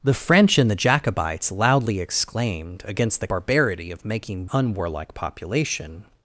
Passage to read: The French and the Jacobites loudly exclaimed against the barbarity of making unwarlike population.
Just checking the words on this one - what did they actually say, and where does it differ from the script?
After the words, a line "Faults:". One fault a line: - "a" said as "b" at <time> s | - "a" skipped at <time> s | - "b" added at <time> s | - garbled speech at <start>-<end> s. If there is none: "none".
The French and the Jacobites loudly exclaimed against the barbarity of making unwarlike population.
Faults:
none